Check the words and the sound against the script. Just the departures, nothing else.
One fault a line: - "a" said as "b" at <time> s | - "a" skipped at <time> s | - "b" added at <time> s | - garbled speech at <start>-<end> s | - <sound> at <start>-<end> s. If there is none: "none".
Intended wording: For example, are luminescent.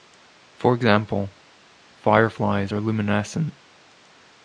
- "fireflies" added at 2.0 s